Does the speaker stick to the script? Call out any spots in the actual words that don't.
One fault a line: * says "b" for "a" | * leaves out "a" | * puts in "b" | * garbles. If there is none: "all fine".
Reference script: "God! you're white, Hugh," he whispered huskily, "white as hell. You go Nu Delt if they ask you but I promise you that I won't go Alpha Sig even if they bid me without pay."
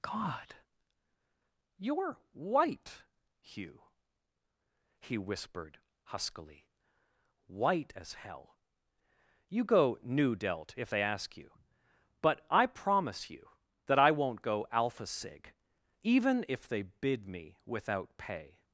all fine